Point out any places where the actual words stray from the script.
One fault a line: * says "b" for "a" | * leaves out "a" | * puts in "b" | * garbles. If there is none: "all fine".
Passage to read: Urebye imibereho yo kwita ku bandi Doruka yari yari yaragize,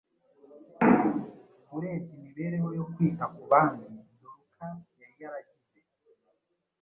* leaves out "yari"